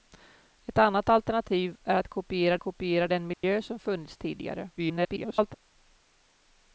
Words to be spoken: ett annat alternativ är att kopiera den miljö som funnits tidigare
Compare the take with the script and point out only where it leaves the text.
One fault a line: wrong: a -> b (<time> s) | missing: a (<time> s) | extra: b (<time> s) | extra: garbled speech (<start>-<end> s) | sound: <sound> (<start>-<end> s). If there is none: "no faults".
extra: kopiera (2.6 s)
sound: dropout (3.3-3.4 s)
extra: garbled speech (4.8-5.5 s)